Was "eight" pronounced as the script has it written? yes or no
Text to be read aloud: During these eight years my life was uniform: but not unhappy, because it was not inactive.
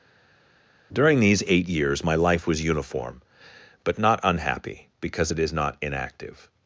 yes